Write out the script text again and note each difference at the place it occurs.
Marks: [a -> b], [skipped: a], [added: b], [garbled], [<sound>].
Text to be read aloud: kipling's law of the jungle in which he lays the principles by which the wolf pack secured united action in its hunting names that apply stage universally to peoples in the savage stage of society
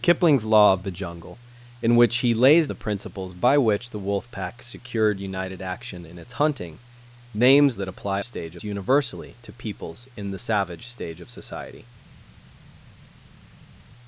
kipling's law of the jungle in which he lays the principles by which the wolf pack secured united action in its hunting names that apply stage universally to peoples in the savage stage of society